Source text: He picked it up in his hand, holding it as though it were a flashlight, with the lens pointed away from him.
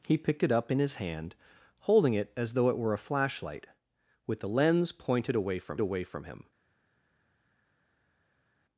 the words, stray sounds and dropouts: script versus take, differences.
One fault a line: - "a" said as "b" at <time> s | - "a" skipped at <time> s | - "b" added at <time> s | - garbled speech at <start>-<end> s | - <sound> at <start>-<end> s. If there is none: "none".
- "away from" added at 5.8 s